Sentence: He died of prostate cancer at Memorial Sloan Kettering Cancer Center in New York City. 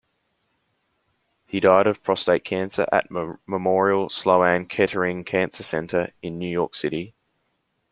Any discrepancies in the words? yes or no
no